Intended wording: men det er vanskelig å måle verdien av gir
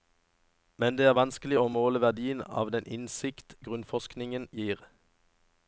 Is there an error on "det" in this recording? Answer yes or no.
no